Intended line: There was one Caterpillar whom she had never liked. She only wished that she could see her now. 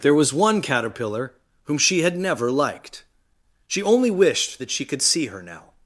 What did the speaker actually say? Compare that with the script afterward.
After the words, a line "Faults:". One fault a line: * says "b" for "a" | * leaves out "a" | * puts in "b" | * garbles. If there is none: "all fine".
There was one Caterpillar whom she had never liked. She only wished that she could see her now.
Faults:
all fine